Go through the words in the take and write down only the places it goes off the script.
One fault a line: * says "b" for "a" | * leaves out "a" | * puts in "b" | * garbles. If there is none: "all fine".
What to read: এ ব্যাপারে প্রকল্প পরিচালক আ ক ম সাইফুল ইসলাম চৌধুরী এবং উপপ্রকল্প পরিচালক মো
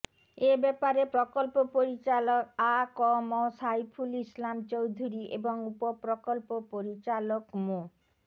all fine